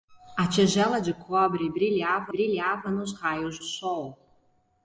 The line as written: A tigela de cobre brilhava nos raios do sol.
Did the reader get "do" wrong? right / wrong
wrong